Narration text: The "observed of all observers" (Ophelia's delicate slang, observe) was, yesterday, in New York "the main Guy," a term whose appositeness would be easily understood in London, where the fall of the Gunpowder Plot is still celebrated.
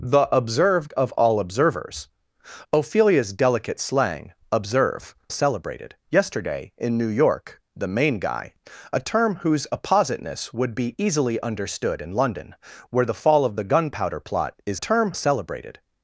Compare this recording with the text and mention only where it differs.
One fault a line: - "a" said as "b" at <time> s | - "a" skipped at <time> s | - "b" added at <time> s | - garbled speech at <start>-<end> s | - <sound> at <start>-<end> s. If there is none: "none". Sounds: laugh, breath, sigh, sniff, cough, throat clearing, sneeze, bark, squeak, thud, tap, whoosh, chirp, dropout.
- "was" said as "celebrated" at 5.3 s
- "still" said as "term" at 14.8 s